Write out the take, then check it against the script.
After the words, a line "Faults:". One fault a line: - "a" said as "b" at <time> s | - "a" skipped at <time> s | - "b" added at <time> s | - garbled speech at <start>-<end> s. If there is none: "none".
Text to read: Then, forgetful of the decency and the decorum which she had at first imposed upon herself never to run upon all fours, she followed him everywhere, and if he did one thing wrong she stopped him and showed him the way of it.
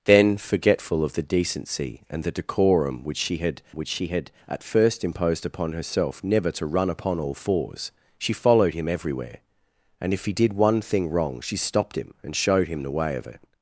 Then, forgetful of the decency and the decorum which she had which she had at first imposed upon herself never to run upon all fours, she followed him everywhere, and if he did one thing wrong she stopped him and showed him the way of it.
Faults:
- "which she had" added at 3.7 s